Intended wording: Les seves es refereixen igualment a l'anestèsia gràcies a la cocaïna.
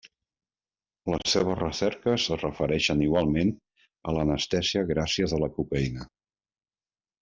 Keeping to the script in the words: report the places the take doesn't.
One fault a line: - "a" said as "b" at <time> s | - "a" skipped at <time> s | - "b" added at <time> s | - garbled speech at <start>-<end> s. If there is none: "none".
- "recerques" added at 1.6 s